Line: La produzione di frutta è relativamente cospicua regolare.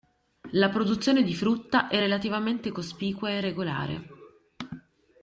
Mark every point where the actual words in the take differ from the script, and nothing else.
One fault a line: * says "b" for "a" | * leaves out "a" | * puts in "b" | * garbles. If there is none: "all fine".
* puts in "e"